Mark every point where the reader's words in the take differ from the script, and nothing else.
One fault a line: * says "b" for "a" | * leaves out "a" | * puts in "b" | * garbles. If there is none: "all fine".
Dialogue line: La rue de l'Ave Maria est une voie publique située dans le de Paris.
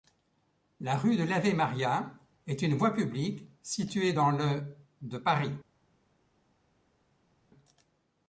all fine